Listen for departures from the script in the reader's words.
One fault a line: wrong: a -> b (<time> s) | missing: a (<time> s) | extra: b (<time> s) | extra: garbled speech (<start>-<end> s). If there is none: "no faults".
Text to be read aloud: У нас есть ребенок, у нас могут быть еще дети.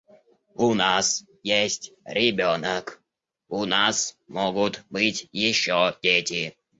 no faults